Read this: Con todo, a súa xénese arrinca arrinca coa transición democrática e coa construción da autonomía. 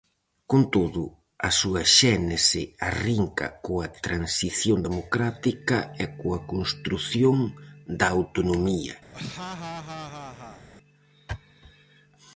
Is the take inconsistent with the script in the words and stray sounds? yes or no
yes